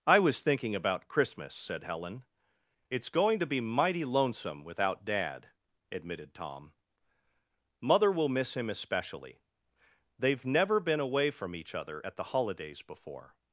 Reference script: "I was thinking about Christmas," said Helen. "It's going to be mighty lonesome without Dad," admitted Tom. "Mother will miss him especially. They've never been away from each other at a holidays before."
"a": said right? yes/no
no